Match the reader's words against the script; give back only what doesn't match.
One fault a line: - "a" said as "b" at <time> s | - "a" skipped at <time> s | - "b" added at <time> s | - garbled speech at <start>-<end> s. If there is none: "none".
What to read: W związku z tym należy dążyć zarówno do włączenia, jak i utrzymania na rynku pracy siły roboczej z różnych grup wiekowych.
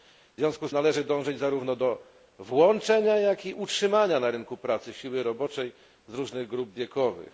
- "tym" skipped at 0.7 s